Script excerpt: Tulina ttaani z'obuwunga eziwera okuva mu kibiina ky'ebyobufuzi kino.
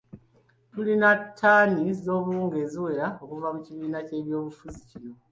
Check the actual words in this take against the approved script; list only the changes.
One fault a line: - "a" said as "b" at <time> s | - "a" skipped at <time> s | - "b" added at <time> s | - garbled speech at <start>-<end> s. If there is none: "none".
none